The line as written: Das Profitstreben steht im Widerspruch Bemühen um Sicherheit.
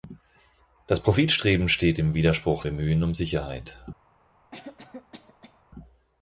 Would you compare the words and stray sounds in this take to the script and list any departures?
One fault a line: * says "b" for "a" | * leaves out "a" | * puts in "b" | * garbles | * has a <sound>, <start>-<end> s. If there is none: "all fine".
* has a cough, 4.5-5.6 s